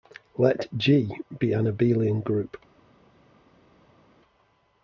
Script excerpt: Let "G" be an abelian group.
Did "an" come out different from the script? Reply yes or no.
no